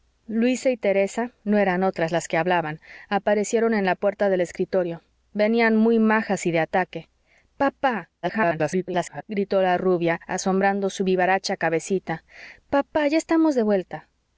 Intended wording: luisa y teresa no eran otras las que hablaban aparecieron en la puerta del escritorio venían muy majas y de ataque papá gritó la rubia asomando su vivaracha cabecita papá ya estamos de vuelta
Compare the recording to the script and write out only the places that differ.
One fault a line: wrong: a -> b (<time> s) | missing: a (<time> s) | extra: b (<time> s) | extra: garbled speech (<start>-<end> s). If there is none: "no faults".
extra: garbled speech (8.2-9.2 s)